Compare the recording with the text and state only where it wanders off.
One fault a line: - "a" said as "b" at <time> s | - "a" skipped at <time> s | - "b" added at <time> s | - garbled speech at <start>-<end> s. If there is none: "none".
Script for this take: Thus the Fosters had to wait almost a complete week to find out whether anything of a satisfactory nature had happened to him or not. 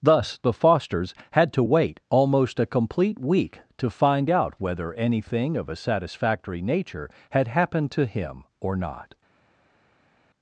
none